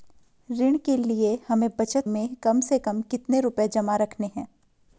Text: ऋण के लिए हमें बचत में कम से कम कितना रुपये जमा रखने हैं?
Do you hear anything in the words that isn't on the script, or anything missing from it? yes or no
no